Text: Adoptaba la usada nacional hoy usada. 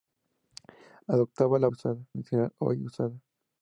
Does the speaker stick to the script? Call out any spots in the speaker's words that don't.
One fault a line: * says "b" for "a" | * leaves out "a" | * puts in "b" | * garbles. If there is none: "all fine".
all fine